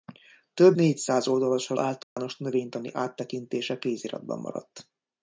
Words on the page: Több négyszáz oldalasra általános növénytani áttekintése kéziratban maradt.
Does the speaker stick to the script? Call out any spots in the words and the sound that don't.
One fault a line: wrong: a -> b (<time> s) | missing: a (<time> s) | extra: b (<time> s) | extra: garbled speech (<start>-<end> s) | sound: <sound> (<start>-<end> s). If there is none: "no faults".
sound: dropout (2.0-2.2 s)